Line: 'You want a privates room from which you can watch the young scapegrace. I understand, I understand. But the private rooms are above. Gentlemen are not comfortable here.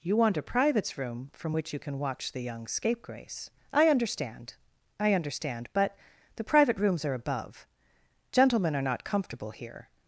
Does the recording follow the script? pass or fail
pass